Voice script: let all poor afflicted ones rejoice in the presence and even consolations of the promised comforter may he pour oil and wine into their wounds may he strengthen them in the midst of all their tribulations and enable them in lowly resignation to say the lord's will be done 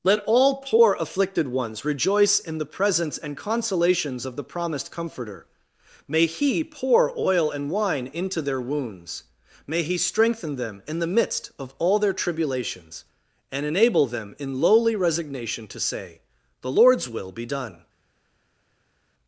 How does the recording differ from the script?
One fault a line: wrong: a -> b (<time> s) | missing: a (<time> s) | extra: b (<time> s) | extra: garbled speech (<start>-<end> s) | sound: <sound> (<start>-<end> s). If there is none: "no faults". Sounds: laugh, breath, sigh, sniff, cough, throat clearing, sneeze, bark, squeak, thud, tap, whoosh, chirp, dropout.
missing: even (3.4 s)